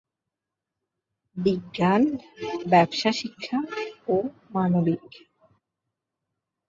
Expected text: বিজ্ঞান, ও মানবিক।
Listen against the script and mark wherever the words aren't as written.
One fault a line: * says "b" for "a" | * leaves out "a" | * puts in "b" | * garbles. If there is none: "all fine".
* puts in "ব্যবসা শিক্ষা"